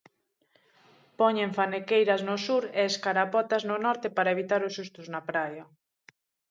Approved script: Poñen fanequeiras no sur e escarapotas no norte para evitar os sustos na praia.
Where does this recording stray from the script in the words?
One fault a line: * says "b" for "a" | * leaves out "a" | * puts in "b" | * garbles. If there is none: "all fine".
all fine